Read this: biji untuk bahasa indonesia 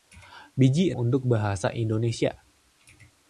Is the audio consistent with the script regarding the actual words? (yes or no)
yes